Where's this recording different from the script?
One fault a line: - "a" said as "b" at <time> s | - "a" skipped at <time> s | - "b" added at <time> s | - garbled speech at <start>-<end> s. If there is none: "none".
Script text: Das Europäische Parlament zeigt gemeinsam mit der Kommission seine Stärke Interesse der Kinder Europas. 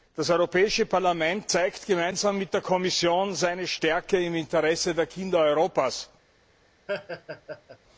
- "im" added at 4.2 s